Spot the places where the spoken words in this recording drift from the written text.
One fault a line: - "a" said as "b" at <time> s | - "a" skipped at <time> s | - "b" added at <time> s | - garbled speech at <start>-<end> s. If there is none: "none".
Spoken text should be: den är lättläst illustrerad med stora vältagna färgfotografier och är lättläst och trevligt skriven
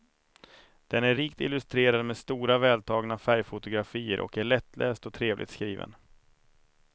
- "lättläst" said as "rikt" at 1.1 s